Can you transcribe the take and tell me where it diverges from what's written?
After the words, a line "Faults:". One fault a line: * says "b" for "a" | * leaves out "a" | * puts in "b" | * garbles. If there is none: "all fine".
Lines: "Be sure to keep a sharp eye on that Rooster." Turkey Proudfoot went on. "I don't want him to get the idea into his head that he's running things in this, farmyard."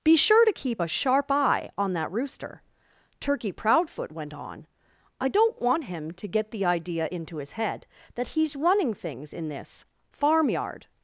"Be sure to keep a sharp eye on that Rooster." Turkey Proudfoot went on. "I don't want him to get the idea into his head that he's running things in this, farmyard."
Faults:
all fine